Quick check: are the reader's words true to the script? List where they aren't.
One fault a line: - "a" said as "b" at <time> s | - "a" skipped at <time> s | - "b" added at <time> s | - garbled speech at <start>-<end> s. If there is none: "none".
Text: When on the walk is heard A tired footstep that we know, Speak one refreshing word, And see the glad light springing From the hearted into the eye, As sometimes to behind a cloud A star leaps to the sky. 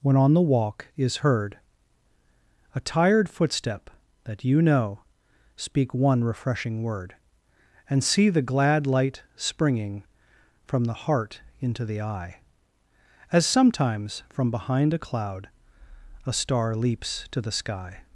- "we" said as "you" at 4.4 s
- "hearted" said as "heart" at 10.9 s
- "to" said as "from" at 14.3 s